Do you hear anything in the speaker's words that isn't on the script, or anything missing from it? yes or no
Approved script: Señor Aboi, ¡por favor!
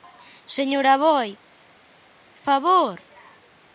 yes